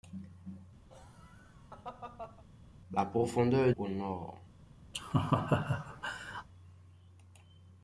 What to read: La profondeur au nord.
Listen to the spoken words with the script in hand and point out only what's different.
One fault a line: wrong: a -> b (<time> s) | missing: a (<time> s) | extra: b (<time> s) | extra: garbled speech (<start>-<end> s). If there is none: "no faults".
no faults